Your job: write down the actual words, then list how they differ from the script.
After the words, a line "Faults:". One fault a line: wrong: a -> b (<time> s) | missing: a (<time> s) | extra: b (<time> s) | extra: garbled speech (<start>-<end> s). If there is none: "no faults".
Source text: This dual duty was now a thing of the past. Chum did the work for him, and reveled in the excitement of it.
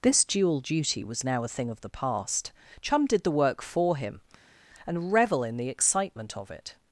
This dual duty was now a thing of the past. Chum did the work for him, and revel in the excitement of it.
Faults:
wrong: reveled -> revel (5.1 s)